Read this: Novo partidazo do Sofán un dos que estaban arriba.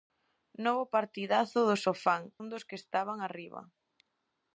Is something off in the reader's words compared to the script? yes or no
no